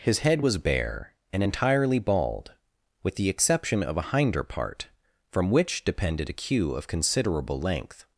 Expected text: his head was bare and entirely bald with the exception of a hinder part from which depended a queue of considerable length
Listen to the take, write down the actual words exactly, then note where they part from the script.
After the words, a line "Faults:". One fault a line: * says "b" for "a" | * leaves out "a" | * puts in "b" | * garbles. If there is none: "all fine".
his head was bare and entirely bald with the exception of a hinder part from which depended a queue of considerable length
Faults:
all fine